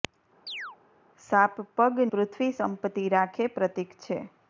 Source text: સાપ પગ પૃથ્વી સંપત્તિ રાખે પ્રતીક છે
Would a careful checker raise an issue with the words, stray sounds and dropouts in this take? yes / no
yes